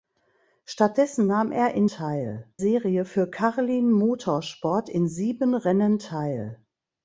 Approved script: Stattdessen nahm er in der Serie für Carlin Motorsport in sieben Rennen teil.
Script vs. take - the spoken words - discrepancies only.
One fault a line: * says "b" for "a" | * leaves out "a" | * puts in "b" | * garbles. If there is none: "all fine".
* says "teil" for "der"